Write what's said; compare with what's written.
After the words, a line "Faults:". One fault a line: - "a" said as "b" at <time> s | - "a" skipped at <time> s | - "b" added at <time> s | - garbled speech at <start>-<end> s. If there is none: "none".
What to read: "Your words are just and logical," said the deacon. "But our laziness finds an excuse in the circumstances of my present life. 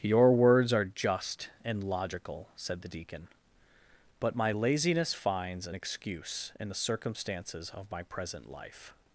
"Your words are just and logical," said the deacon. "But my laziness finds an excuse in the circumstances of my present life.
Faults:
- "our" said as "my" at 4.3 s